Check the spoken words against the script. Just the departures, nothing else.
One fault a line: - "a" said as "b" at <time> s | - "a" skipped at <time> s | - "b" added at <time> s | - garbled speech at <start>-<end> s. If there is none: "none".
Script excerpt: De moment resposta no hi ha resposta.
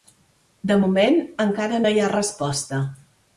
- "resposta" said as "encara" at 1.5 s